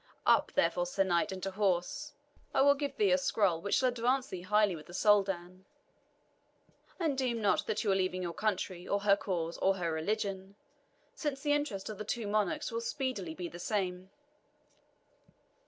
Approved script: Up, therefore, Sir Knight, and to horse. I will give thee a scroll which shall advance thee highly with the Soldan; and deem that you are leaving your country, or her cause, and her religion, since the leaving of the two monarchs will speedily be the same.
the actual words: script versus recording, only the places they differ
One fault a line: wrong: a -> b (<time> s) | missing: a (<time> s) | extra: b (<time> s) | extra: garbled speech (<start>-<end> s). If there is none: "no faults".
extra: not (7.4 s)
wrong: and -> or (9.6 s)
wrong: leaving -> interest (11.5 s)